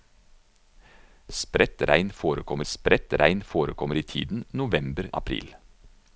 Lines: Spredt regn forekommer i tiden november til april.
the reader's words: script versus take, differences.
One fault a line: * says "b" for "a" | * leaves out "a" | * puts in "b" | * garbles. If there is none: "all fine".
* puts in "spredt regn forekommer"
* leaves out "til"